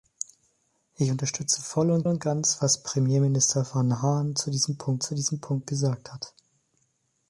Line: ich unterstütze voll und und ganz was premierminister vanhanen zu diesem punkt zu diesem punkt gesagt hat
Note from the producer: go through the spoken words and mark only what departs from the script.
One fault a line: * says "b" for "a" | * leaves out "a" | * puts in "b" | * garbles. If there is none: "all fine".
all fine